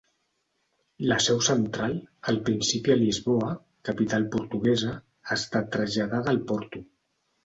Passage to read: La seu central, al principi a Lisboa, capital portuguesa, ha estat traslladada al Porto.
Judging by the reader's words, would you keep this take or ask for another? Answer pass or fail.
pass